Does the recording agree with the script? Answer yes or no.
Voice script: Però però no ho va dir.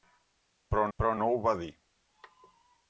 yes